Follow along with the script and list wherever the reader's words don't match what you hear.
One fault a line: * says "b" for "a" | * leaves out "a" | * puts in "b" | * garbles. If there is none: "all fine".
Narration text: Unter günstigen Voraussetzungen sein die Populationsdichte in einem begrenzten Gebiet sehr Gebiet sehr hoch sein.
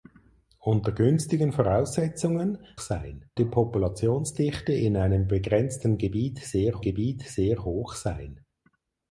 all fine